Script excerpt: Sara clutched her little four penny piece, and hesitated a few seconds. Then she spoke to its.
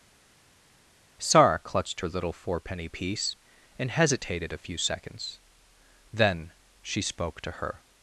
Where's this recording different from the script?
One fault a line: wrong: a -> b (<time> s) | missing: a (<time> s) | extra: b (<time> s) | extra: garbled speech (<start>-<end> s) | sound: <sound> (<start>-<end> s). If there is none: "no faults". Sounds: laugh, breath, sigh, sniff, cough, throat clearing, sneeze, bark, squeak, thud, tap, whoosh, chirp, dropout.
wrong: its -> her (7.6 s)